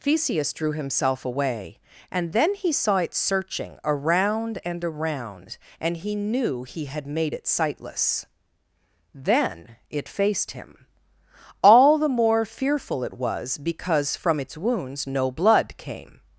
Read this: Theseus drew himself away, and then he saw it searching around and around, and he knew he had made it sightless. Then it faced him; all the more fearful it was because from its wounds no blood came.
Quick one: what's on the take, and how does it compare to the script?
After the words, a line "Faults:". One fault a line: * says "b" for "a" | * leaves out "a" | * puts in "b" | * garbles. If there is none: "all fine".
Theseus drew himself away, and then he saw it searching around and around, and he knew he had made it sightless. Then it faced him; all the more fearful it was because from its wounds no blood came.
Faults:
all fine